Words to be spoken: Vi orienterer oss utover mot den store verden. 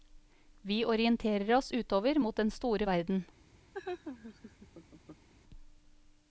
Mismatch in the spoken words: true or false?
false